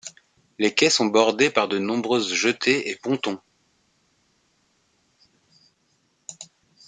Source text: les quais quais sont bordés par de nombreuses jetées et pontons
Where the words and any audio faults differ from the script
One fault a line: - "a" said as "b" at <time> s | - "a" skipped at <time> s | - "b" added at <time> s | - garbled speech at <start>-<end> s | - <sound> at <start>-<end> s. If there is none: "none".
- "quais" skipped at 0.9 s